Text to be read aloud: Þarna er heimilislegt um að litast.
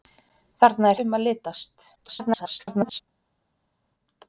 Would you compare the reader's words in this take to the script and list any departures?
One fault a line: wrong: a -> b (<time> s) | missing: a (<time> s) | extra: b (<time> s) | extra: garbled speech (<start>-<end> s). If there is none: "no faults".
missing: heimilislegt (1.0 s)
extra: garbled speech (1.9-3.0 s)